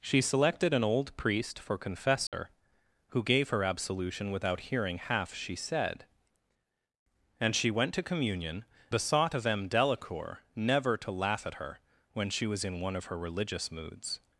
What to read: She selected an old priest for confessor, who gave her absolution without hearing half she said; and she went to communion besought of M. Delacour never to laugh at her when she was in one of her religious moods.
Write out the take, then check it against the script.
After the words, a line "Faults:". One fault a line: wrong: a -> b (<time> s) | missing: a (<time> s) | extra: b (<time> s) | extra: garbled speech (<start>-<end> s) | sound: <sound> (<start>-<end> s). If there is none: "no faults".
She selected an old priest for confessor, who gave her absolution without hearing half she said; and she went to communion besought of M. Delacour never to laugh at her when she was in one of her religious moods.
Faults:
sound: dropout (2.3-2.3 s)